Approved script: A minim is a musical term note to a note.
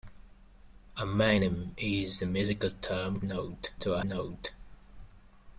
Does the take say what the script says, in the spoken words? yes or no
yes